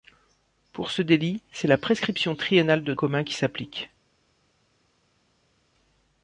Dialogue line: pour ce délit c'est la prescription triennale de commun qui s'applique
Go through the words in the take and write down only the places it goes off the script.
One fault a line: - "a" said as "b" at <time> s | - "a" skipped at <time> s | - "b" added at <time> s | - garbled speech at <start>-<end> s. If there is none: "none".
none